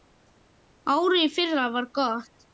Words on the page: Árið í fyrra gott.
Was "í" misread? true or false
false